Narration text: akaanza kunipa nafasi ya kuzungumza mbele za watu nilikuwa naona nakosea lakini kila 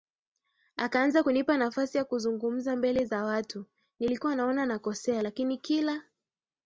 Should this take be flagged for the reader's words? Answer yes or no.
no